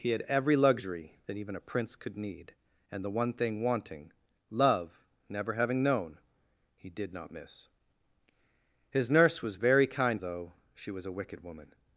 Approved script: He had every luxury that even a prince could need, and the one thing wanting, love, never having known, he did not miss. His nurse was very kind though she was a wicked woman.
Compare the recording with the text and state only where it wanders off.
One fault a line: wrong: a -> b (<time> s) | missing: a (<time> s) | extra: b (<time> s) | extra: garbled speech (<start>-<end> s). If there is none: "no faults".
no faults